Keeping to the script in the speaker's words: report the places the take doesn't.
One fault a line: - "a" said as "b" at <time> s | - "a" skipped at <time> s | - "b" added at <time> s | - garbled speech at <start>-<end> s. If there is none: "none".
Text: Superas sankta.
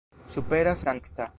none